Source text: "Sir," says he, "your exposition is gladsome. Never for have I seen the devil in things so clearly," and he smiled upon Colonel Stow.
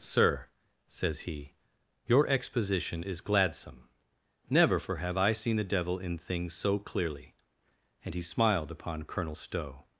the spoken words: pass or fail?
pass